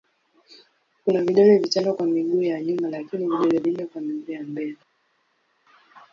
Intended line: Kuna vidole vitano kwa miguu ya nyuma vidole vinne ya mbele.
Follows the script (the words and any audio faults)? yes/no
no